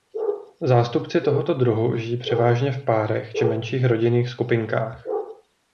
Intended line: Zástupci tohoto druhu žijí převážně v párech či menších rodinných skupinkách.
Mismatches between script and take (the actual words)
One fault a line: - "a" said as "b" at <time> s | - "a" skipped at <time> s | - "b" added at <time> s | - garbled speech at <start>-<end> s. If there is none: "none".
none